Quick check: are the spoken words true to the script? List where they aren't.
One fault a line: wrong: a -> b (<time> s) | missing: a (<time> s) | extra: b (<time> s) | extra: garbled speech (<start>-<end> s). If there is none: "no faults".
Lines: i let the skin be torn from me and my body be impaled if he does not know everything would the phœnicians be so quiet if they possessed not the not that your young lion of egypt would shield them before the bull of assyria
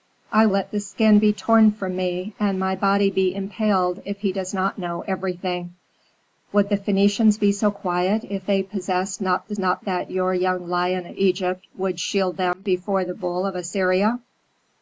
no faults